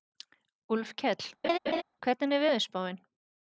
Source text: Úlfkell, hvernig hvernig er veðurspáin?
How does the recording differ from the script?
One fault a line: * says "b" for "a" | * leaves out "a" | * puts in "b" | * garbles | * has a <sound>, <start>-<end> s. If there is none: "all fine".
* has a laugh, 1.4-1.8 s
* leaves out "hvernig"